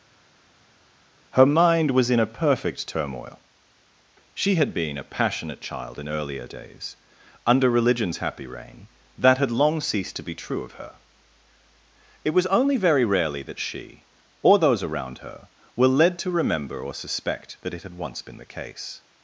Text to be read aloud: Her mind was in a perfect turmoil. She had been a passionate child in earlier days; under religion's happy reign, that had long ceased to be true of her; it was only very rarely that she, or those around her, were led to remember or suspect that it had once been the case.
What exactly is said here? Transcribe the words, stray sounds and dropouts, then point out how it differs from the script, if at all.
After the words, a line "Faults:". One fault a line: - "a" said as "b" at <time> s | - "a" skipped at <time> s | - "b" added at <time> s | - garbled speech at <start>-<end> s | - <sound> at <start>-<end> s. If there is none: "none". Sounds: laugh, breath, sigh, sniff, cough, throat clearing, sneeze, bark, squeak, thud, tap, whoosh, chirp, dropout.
Her mind was in a perfect turmoil. She had been a passionate child in earlier days; under religion's happy reign, that had long ceased to be true of her; it was only very rarely that she, or those around her, were led to remember or suspect that it had once been the case.
Faults:
none